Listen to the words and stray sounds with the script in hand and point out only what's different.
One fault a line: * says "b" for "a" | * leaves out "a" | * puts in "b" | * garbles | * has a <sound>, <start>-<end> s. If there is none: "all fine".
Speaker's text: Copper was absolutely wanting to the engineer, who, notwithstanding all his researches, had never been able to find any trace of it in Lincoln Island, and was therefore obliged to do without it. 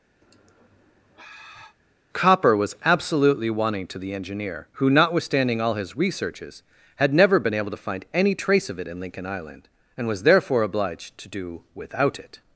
* has a sigh, 0.2-1.8 s